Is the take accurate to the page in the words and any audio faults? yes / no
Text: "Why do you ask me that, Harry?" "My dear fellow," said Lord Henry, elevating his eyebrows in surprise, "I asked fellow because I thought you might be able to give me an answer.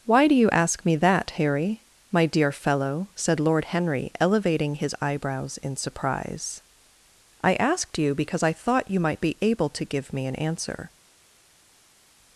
no